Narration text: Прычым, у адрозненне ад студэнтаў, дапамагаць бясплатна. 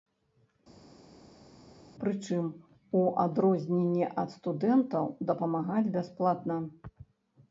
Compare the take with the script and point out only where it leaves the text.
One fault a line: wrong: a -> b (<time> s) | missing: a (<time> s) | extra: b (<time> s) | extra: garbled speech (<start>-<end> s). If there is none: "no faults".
no faults